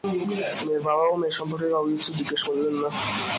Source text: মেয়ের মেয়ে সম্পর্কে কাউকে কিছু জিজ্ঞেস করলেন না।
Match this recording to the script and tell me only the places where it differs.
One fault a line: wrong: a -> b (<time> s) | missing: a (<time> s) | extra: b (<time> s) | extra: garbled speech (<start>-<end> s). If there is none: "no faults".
extra: বাবাও (0.9 s)